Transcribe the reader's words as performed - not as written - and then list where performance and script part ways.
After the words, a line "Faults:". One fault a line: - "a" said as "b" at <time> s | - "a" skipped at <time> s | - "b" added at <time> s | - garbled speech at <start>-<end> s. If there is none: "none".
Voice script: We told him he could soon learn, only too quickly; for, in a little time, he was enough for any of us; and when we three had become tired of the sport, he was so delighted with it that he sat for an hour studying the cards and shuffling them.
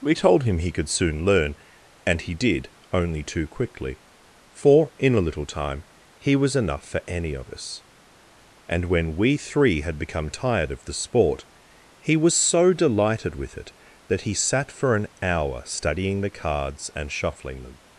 We told him he could soon learn, and he did, only too quickly; for, in a little time, he was enough for any of us; and when we three had become tired of the sport, he was so delighted with it that he sat for an hour studying the cards and shuffling them.
Faults:
- "and he did" added at 2.0 s